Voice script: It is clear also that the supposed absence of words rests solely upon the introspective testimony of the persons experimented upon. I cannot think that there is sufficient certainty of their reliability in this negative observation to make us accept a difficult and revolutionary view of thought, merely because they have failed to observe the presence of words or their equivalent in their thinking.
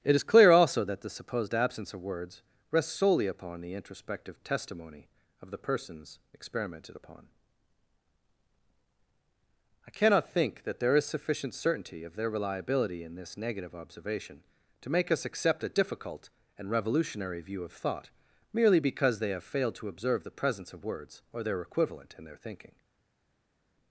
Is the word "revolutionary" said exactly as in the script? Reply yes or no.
yes